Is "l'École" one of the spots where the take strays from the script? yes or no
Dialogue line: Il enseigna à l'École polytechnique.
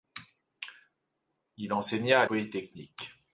yes